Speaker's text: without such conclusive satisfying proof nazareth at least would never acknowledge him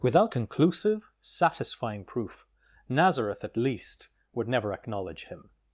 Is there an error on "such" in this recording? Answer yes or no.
yes